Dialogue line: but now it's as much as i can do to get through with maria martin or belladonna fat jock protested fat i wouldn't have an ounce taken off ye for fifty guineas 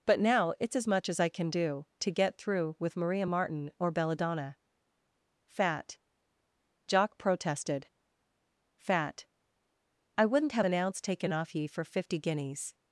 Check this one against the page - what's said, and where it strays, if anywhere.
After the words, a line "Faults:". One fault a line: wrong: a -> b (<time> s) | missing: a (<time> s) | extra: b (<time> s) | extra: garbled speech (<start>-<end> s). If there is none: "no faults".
but now it's as much as i can do to get through with maria martin or belladonna fat jock protested fat i wouldn't have an ounce taken off ye for fifty guineas
Faults:
no faults